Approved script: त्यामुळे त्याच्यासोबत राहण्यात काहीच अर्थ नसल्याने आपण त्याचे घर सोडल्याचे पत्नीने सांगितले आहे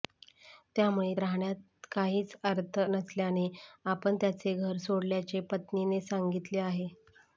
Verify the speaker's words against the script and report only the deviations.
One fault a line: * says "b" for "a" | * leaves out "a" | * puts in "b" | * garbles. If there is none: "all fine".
* leaves out "त्याच्यासोबत"